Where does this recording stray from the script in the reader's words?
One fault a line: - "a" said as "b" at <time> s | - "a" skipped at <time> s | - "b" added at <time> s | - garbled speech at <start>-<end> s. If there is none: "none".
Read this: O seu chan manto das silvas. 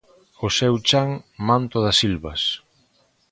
none